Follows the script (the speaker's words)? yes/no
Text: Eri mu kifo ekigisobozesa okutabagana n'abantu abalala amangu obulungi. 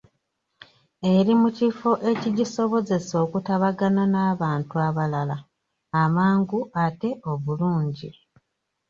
no